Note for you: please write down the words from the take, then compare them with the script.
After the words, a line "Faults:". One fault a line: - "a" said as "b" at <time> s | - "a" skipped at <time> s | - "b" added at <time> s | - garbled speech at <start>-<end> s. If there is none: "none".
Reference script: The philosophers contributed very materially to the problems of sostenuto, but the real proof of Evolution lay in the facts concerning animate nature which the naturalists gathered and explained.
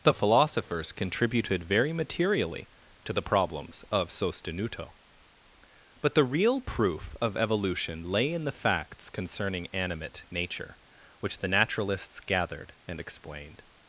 The philosophers contributed very materially to the problems of sostenuto, but the real proof of Evolution lay in the facts concerning animate nature which the naturalists gathered and explained.
Faults:
none